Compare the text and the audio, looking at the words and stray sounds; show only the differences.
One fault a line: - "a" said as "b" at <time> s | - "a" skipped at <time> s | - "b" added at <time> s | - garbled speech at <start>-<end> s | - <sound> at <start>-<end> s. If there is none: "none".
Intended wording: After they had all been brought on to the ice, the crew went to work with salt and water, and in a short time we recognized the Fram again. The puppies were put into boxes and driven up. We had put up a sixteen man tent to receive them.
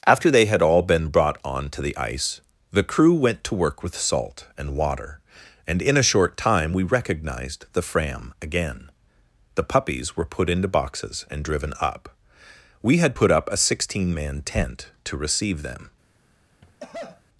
- cough at 16.6-17.2 s